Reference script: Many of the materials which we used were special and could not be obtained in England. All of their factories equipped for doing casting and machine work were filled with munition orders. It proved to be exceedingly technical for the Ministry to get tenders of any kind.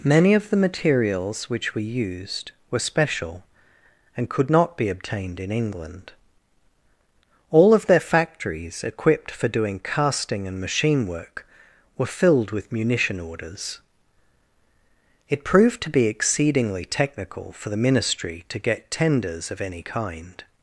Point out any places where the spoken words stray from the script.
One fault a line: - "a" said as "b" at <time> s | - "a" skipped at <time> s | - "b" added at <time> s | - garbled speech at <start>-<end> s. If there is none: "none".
none